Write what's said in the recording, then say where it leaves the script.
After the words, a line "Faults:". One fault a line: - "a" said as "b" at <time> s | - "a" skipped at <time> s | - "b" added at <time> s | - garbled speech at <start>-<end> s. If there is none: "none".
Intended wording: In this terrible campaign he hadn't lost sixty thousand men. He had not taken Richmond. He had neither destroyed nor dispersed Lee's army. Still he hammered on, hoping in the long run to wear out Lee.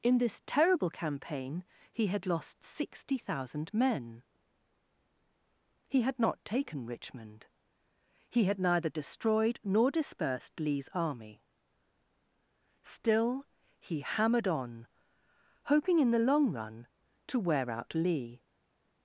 In this terrible campaign he had lost sixty thousand men. He had not taken Richmond. He had neither destroyed nor dispersed Lee's army. Still he hammered on, hoping in the long run to wear out Lee.
Faults:
- "hadn't" said as "had" at 2.1 s